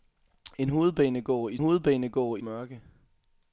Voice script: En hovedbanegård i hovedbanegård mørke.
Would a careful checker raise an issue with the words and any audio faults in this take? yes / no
no